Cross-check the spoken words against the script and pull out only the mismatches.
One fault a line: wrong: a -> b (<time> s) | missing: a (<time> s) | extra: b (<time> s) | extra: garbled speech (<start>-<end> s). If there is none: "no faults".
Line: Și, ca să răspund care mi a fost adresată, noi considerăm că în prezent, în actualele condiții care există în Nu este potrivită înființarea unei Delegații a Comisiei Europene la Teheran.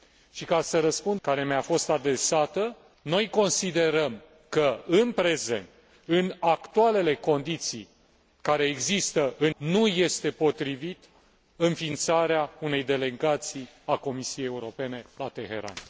no faults